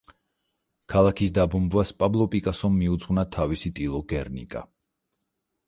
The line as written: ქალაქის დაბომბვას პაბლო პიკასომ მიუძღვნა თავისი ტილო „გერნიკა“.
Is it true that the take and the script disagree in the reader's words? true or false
false